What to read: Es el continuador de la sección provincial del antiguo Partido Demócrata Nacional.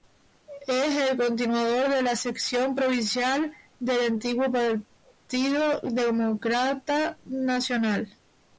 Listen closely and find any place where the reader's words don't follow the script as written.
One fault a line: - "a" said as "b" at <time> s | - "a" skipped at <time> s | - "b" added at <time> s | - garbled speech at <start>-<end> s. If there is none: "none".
none